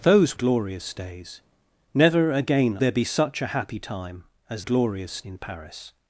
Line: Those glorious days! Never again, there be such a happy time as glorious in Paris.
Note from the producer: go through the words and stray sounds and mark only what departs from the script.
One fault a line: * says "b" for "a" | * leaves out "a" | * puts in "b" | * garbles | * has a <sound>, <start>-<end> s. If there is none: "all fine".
all fine